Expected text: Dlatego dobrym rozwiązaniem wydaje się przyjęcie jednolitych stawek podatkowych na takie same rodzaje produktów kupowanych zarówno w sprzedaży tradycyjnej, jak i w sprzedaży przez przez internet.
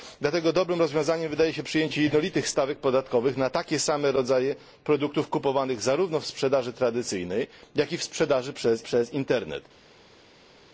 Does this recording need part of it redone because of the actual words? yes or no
no